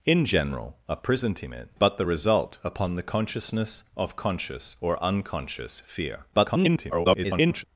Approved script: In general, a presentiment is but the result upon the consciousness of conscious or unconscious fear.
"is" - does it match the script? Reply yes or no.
no